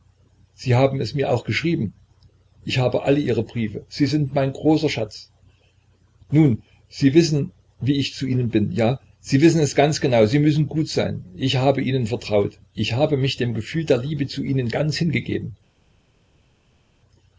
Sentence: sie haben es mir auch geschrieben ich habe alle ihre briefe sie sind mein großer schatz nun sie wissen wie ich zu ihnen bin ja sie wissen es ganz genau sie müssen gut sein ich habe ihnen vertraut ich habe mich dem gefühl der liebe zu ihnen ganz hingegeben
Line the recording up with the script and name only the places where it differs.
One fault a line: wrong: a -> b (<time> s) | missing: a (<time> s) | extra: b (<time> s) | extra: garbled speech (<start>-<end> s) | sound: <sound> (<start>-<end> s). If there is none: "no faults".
no faults